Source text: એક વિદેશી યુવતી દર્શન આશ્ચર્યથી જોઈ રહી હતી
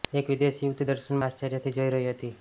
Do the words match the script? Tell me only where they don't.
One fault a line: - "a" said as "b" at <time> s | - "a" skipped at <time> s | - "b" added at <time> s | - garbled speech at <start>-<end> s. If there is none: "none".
none